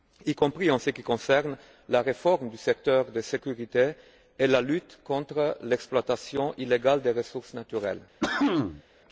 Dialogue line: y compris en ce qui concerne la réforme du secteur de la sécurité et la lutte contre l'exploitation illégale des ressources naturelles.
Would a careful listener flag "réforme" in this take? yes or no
no